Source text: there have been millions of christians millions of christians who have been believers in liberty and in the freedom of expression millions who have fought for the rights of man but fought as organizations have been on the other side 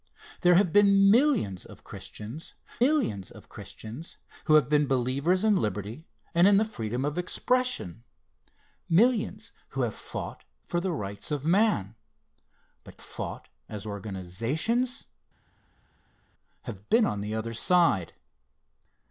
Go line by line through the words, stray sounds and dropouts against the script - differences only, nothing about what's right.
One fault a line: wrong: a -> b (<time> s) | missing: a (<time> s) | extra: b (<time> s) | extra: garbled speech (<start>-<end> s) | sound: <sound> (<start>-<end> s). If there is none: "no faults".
no faults